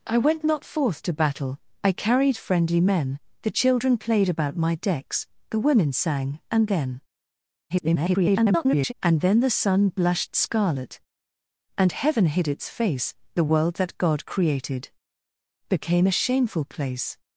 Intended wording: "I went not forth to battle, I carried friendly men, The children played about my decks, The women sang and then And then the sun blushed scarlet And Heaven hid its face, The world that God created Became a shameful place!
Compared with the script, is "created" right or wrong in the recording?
right